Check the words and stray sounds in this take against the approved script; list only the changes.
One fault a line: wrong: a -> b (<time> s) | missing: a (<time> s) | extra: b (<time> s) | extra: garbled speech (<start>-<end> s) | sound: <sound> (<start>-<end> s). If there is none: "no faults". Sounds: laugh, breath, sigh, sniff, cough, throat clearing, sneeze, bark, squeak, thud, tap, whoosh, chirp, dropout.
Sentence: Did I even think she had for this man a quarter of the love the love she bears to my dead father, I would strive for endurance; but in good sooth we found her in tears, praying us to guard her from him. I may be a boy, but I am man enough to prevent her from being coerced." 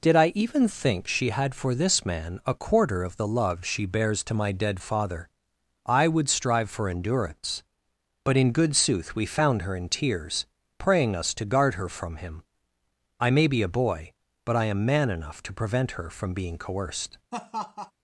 missing: the love (3.6 s)
sound: laugh (17.3-17.9 s)